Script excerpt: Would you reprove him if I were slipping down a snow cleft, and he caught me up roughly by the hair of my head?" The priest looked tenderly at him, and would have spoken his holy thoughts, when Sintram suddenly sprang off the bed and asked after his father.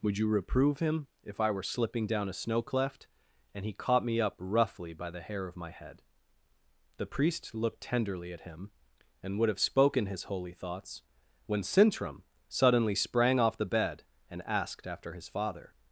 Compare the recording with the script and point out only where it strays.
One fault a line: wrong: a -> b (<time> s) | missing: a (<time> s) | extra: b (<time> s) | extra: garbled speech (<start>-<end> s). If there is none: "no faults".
no faults